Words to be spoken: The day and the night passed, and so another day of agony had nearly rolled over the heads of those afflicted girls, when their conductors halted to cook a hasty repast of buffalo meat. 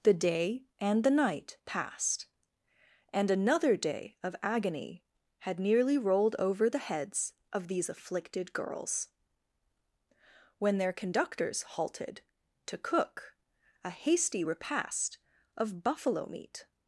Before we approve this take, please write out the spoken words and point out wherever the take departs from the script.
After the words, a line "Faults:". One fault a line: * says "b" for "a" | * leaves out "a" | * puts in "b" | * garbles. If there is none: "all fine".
The day and the night passed, and another day of agony had nearly rolled over the heads of these afflicted girls, when their conductors halted to cook a hasty repast of buffalo meat.
Faults:
* leaves out "so"
* says "these" for "those"